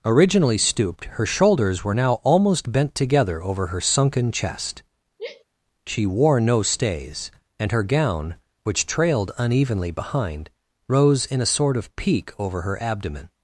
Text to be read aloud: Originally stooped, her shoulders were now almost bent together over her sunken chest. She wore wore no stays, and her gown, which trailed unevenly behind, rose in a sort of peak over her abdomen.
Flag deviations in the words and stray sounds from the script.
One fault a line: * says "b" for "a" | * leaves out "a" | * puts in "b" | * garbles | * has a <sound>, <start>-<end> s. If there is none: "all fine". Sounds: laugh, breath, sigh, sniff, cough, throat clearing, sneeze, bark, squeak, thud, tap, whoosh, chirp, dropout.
* has a sigh, 5.2-5.4 s
* leaves out "wore"